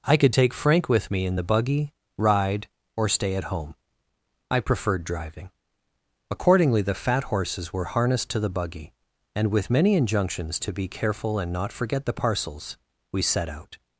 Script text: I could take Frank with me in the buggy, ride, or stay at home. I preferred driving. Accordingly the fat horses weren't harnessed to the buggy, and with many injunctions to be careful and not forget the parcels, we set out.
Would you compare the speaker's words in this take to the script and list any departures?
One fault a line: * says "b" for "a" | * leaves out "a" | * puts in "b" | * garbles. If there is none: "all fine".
* says "were" for "weren't"